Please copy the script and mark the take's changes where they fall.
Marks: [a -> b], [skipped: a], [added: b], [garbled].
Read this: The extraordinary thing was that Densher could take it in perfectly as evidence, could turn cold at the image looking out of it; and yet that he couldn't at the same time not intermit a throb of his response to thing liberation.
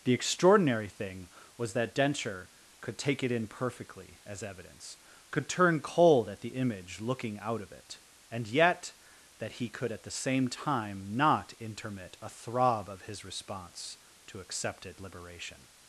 The extraordinary thing was that Densher could take it in perfectly as evidence, could turn cold at the image looking out of it; and yet that he [couldn't -> could] at the same time not intermit a throb of his response to [thing -> accepted] liberation.